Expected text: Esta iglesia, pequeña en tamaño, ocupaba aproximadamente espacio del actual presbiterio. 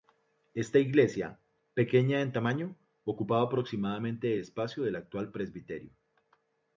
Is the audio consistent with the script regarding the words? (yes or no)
yes